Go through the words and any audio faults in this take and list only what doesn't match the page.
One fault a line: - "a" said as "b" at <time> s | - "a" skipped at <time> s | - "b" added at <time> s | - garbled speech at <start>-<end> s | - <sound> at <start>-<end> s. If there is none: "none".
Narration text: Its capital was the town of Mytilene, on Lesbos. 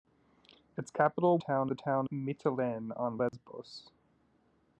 - "was" said as "town" at 1.4 s
- "of" skipped at 2.1 s
- dropout at 3.3-3.3 s